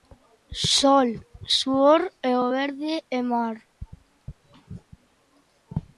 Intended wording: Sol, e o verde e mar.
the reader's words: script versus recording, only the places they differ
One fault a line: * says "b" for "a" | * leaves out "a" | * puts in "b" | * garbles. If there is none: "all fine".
* puts in "suor"